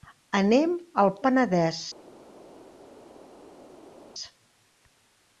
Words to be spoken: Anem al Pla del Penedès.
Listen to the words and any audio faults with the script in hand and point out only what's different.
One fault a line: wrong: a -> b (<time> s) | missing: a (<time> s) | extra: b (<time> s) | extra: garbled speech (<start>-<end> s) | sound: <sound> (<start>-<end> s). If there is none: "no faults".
missing: Pla del (1.1 s)